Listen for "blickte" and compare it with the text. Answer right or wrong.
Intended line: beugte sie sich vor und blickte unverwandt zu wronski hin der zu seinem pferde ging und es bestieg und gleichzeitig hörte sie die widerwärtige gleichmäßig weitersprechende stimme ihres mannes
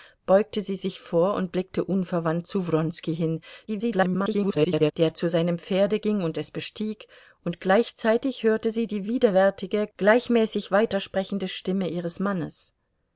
right